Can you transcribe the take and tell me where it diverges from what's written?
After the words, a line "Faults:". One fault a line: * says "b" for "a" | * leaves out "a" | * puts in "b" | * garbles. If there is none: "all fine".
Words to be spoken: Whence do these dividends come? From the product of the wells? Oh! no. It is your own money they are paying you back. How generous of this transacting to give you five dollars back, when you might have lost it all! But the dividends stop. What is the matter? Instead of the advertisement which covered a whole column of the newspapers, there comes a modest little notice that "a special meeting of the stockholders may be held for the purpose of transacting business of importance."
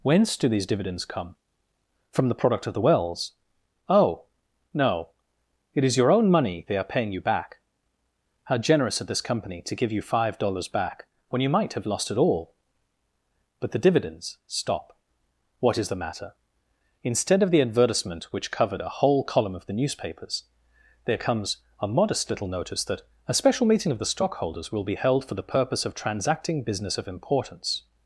Whence do these dividends come? From the product of the wells? Oh! no. It is your own money they are paying you back. How generous of this company to give you five dollars back, when you might have lost it all! But the dividends stop. What is the matter? Instead of the advertisement which covered a whole column of the newspapers, there comes a modest little notice that "a special meeting of the stockholders will be held for the purpose of transacting business of importance."
Faults:
* says "company" for "transacting"
* says "will" for "may"